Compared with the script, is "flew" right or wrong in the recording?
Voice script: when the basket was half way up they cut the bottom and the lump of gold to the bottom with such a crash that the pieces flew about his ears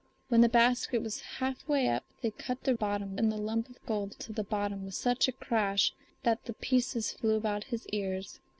right